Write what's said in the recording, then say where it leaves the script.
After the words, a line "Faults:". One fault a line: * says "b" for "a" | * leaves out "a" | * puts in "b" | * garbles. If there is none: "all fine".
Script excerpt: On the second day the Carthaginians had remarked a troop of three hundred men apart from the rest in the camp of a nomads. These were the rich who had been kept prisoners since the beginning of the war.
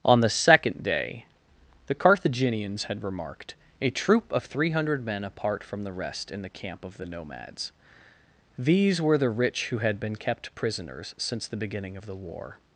On the second day the Carthaginians had remarked a troop of three hundred men apart from the rest in the camp of the nomads. These were the rich who had been kept prisoners since the beginning of the war.
Faults:
* says "the" for "a"